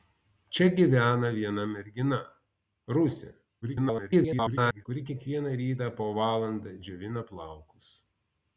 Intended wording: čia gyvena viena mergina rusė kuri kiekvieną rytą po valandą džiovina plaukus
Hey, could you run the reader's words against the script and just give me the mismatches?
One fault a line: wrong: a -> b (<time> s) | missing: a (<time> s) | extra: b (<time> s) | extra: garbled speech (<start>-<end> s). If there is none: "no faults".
extra: garbled speech (3.6-4.8 s)